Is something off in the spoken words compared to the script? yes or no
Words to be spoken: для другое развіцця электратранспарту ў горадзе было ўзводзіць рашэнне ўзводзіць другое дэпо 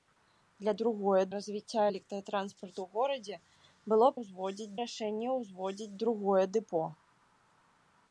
no